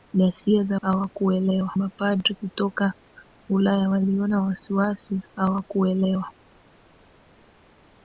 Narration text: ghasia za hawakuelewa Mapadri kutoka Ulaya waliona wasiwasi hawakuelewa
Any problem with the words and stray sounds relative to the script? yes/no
no